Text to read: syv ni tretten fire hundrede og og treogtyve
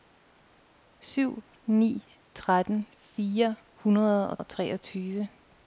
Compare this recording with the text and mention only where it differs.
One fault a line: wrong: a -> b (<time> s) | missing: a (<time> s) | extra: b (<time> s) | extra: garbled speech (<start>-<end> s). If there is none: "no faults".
no faults